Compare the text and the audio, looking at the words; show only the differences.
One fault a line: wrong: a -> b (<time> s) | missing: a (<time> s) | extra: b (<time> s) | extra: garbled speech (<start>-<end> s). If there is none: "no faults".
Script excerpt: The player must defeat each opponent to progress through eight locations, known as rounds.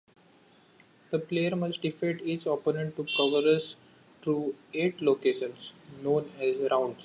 no faults